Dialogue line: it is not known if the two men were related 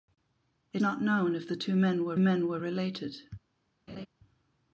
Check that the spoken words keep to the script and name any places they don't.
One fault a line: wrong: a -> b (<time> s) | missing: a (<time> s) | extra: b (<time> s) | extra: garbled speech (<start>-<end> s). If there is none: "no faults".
missing: is (0.8 s)
extra: men were (2.2 s)